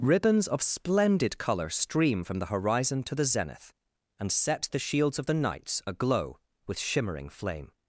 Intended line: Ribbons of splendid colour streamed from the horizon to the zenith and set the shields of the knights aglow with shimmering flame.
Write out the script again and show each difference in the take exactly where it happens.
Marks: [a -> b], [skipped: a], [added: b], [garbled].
Ribbons of splendid colour [streamed -> stream] from the horizon to the zenith and set the shields of the knights aglow with shimmering flame.